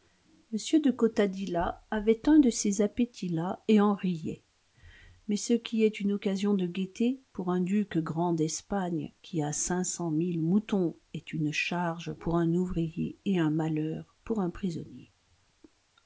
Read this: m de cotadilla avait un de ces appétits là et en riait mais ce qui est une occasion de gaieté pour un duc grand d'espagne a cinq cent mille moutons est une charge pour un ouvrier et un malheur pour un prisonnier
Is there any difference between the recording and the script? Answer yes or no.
yes